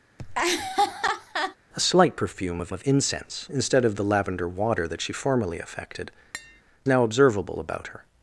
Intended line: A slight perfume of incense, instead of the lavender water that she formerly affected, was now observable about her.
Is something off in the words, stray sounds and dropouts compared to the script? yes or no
yes